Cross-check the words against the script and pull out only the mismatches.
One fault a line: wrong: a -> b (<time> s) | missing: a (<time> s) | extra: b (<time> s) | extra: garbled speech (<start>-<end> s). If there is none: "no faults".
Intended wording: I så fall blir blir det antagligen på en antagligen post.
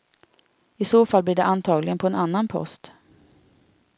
missing: blir (1.4 s)
wrong: antagligen -> annan (2.2 s)